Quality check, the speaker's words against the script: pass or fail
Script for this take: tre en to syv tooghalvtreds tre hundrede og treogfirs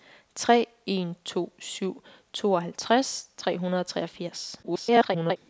fail